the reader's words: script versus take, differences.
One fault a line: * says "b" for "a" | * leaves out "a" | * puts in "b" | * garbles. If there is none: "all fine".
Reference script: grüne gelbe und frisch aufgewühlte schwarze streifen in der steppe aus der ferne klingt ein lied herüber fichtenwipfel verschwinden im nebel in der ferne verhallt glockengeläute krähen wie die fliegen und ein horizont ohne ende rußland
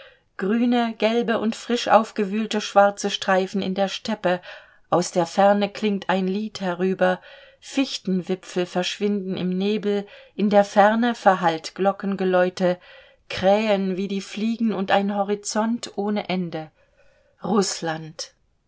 all fine